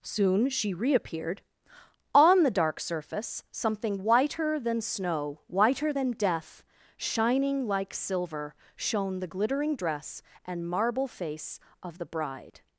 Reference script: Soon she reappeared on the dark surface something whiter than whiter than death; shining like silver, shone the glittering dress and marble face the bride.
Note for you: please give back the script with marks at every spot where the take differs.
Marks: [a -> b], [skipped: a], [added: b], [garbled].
Soon she reappeared on the dark surface something whiter than [added: snow] whiter than death; shining like silver, shone the glittering dress and marble face [added: of] the bride.